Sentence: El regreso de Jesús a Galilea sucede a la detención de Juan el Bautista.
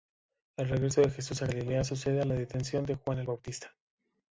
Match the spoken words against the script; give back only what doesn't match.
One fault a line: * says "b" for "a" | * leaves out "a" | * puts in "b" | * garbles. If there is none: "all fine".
all fine